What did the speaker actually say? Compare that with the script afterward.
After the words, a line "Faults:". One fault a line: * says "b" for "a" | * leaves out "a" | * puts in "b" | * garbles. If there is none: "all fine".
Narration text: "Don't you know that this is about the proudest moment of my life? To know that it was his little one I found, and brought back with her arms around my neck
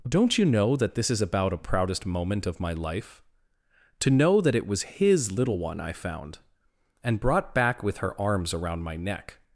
"Don't you know that this is about a proudest moment of my life? To know that it was his little one I found, and brought back with her arms around my neck
Faults:
* says "a" for "the"